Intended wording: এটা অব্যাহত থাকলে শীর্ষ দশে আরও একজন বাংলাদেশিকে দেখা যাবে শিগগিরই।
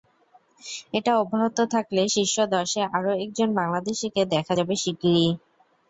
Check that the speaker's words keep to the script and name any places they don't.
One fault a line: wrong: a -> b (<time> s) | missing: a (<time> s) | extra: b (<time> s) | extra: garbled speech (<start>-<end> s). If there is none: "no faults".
no faults